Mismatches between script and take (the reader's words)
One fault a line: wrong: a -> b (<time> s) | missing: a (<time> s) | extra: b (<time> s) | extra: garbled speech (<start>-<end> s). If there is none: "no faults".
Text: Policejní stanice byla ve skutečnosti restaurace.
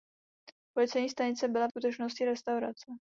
missing: ve (1.7 s)